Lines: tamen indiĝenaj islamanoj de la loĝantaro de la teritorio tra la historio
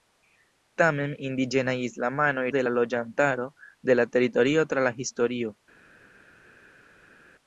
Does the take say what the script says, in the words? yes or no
yes